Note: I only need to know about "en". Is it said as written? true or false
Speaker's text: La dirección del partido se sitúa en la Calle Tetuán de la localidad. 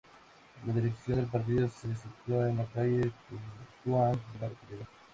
true